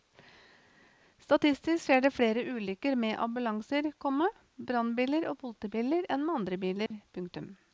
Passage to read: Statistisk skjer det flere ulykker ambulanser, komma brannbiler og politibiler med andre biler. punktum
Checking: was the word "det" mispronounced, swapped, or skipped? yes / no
no